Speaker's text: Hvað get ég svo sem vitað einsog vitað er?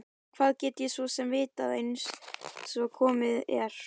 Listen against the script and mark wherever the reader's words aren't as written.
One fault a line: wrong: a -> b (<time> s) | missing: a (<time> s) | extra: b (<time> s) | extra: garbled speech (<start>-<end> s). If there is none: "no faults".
wrong: vitað -> komið (3.0 s)